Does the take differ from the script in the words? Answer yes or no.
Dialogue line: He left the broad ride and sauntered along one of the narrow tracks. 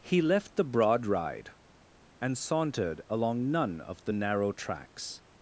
yes